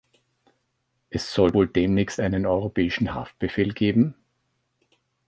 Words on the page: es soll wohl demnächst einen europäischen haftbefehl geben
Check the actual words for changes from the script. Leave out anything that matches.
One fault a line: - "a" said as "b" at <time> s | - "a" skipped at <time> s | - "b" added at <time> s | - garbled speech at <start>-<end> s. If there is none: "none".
none